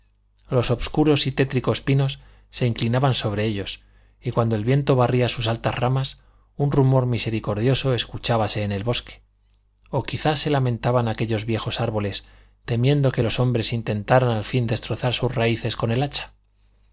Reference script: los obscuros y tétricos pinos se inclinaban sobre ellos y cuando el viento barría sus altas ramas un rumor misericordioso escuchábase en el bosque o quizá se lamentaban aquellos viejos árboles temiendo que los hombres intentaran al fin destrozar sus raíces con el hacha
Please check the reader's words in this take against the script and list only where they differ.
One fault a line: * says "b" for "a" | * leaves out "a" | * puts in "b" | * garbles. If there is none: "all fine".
all fine